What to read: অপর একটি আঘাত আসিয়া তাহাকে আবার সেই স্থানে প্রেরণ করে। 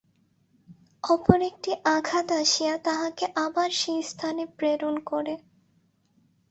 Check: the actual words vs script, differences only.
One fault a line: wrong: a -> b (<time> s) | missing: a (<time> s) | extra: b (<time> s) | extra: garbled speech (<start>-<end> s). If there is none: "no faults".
no faults